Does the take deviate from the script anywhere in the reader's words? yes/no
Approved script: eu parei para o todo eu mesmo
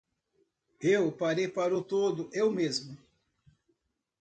no